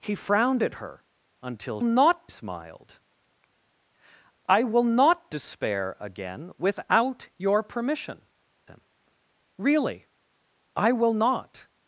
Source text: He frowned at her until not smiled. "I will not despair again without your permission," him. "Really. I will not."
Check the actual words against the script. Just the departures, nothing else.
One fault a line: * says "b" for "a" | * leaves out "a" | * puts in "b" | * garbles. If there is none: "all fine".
all fine